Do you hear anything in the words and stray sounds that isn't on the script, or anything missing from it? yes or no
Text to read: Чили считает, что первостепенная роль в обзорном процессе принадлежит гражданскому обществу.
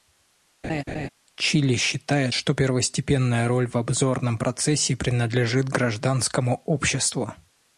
yes